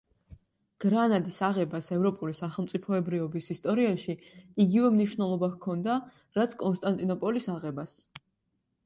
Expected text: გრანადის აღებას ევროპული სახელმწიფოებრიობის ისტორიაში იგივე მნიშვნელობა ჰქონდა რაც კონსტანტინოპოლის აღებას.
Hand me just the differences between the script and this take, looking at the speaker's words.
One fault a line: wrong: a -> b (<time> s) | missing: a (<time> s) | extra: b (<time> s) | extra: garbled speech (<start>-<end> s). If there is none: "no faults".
no faults